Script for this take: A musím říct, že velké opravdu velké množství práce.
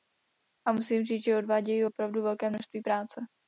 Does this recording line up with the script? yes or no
no